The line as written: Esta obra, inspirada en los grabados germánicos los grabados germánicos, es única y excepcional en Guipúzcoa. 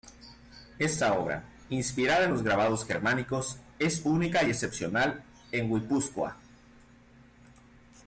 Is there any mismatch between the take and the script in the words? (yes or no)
yes